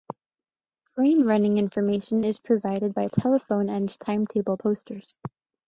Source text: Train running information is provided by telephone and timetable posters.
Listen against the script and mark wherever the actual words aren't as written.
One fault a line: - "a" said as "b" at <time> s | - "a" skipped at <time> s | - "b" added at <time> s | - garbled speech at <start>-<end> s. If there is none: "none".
none